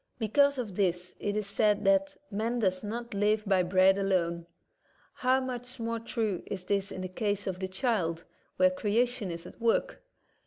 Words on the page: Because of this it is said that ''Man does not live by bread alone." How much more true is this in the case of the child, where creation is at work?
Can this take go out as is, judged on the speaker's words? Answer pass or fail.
pass